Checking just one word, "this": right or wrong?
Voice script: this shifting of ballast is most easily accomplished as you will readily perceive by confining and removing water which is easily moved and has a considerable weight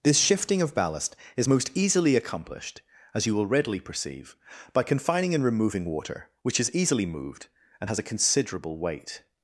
right